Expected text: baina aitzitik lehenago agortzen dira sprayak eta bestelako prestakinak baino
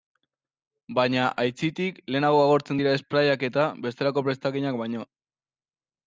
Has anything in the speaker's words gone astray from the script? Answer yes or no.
no